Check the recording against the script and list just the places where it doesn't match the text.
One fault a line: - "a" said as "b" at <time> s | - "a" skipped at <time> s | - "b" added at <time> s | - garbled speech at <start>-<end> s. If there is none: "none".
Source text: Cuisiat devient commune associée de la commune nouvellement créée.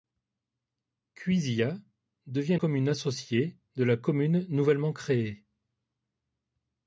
none